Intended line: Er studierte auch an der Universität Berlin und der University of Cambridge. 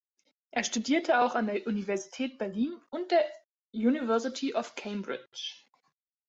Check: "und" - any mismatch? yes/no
no